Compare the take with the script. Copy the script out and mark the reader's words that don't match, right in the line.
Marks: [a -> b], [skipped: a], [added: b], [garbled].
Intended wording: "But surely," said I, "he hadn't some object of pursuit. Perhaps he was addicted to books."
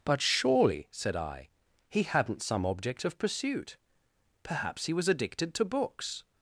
"But surely," said I, "he hadn't some object of pursuit. Perhaps he was addicted to books."